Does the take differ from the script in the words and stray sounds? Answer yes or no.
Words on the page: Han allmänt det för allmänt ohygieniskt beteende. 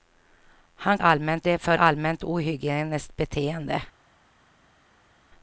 no